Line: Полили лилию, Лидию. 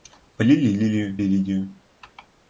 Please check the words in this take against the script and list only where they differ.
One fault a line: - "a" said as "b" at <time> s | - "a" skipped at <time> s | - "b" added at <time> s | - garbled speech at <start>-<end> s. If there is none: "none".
none